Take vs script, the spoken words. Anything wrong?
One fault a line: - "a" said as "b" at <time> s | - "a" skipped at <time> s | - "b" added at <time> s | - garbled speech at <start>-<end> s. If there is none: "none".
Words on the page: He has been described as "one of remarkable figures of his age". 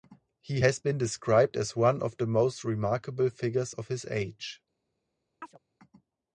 - "the most" added at 2.2 s